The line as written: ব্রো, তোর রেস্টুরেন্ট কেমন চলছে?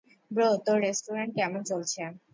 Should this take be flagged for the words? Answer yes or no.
no